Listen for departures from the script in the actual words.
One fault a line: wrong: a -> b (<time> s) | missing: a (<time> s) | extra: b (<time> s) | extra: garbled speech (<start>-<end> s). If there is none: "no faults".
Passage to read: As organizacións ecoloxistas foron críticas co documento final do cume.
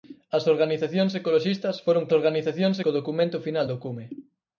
wrong: críticas -> organizacións (2.2 s)